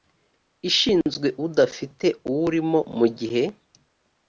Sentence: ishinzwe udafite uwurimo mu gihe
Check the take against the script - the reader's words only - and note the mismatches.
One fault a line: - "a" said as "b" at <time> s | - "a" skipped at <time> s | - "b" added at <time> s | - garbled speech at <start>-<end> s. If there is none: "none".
none